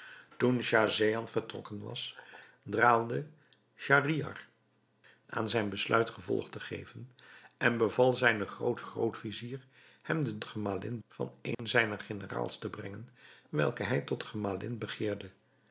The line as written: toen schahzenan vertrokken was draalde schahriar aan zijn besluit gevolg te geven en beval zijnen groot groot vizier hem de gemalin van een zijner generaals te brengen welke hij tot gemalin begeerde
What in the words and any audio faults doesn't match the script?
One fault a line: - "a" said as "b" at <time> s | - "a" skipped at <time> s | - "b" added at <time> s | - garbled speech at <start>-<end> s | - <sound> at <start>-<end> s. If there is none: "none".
- dropout at 11.5-11.6 s